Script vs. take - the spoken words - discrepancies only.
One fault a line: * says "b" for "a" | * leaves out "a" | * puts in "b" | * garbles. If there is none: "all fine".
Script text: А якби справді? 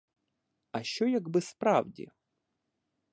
* puts in "що"